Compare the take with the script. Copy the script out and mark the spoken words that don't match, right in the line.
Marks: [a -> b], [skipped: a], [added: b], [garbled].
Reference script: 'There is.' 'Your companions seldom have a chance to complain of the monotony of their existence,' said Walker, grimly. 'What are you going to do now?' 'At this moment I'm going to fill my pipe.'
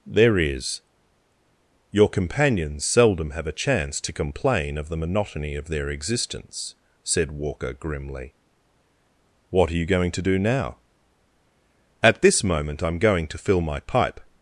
'There is.' 'Your companions seldom have a chance to complain of the monotony of their existence,' said Walker, grimly. 'What are you going to do now?' 'At this moment I'm going to fill my pipe.'